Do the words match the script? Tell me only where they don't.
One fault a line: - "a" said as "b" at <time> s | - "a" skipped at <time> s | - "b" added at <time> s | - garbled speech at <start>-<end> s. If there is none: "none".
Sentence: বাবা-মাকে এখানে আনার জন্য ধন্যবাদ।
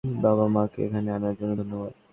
none